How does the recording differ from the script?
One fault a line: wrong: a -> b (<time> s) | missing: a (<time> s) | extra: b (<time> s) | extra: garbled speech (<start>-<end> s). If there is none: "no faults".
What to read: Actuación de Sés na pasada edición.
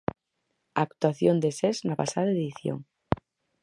no faults